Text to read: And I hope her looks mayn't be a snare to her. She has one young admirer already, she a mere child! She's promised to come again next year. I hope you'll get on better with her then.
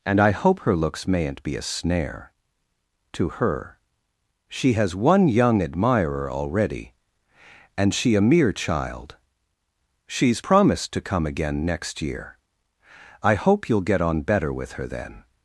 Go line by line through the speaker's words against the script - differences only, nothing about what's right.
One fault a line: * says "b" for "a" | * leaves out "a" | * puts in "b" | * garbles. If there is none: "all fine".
* puts in "and"